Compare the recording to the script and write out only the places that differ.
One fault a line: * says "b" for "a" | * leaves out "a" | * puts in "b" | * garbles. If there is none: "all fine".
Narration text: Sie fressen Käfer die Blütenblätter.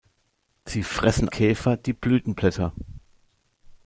all fine